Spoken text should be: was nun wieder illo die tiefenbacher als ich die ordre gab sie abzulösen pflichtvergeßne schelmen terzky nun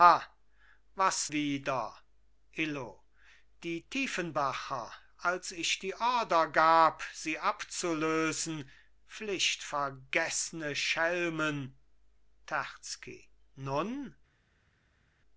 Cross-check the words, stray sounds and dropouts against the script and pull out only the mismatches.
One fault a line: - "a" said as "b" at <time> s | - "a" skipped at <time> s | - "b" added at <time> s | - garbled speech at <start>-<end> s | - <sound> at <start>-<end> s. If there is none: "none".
- "nun" skipped at 1.3 s